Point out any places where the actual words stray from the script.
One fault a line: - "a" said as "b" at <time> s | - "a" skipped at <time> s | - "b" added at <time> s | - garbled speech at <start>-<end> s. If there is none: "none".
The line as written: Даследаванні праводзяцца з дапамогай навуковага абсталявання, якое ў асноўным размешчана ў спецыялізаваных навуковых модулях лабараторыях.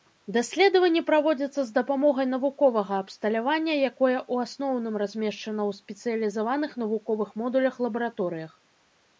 none